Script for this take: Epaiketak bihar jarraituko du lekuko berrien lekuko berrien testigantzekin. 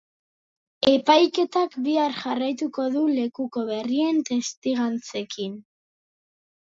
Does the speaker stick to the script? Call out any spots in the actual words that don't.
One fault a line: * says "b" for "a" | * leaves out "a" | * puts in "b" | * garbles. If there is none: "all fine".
* leaves out "lekuko berrien"